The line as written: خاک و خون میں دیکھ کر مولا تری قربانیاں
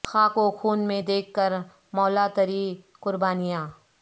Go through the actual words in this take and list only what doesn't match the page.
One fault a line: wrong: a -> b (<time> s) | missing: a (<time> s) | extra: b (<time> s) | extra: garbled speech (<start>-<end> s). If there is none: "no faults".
no faults